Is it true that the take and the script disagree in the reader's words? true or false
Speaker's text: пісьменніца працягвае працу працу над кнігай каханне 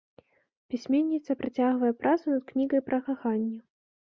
true